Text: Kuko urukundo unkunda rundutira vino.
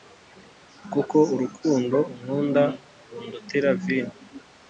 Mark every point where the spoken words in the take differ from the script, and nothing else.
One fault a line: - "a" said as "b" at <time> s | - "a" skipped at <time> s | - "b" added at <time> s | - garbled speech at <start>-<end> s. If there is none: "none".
none